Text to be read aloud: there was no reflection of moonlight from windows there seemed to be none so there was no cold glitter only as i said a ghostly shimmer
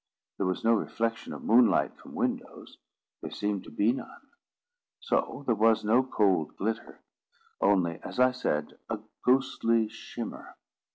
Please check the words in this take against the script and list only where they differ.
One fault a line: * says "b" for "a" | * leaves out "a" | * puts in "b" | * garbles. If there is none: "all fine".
all fine